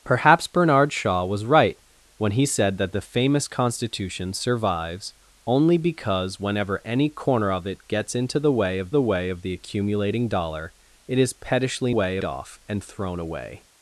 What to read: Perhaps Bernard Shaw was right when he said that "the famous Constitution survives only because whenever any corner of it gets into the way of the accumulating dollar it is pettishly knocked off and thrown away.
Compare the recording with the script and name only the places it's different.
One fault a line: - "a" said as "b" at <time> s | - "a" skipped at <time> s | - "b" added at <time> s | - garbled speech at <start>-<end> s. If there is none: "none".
- "way of the" added at 9.0 s
- "knocked" said as "way" at 11.9 s